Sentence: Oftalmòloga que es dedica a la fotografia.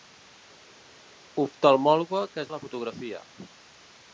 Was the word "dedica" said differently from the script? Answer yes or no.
yes